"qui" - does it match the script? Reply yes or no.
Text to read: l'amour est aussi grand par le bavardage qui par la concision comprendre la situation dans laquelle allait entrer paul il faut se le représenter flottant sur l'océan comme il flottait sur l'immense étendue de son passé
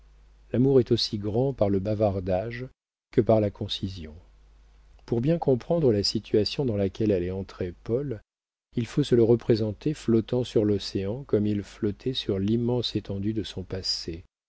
no